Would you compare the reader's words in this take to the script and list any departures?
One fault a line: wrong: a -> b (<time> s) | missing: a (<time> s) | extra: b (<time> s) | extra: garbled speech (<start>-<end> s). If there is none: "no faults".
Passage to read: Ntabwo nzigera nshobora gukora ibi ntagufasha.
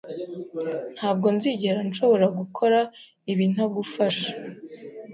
no faults